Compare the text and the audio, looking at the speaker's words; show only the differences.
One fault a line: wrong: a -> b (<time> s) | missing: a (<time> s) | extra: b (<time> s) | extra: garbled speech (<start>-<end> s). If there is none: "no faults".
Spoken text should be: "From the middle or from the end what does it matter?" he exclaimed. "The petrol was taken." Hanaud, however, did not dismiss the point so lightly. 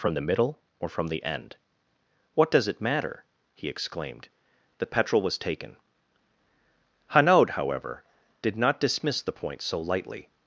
no faults